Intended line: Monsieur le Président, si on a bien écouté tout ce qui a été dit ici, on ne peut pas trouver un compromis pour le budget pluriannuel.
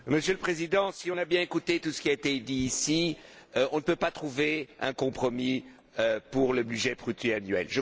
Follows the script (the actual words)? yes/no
yes